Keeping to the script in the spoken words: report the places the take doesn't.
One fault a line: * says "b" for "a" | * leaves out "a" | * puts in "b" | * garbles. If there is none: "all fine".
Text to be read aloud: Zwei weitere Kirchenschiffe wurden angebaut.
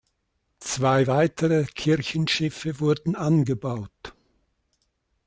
all fine